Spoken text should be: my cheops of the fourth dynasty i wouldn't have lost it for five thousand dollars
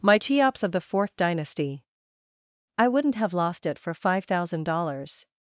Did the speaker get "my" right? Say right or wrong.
right